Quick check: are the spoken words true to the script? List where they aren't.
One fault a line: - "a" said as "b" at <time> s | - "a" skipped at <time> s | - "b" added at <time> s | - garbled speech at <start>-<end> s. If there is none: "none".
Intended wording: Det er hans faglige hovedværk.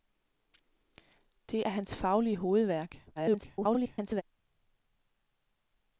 - garbled speech at 3.2-4.2 s